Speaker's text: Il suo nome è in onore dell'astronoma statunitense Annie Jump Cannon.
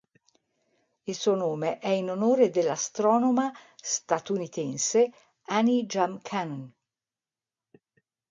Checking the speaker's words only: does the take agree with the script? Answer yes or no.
yes